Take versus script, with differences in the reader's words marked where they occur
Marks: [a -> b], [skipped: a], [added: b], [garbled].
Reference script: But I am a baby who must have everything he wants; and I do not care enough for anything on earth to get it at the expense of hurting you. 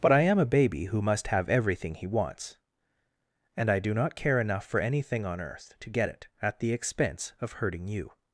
But I am a baby who must have everything he wants; and I do not care enough for anything on earth to get it at the expense of hurting you.